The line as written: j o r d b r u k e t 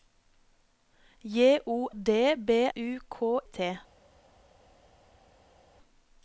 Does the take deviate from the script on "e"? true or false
true